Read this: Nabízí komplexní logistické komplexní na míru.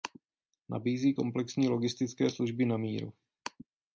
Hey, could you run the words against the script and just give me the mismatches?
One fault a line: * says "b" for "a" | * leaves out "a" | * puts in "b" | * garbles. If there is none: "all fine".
* says "služby" for "komplexní"